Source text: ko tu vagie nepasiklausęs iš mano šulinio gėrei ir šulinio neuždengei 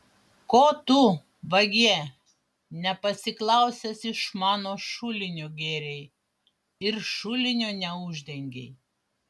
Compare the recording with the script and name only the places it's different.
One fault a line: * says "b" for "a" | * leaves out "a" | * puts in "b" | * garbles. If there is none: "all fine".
all fine